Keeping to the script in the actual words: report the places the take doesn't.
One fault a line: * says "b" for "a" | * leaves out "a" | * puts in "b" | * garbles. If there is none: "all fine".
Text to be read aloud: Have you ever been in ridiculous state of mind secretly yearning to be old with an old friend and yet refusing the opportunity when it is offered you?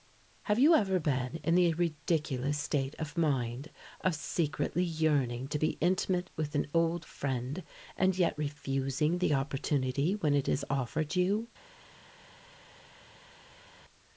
* puts in "the"
* puts in "of"
* says "intimate" for "old"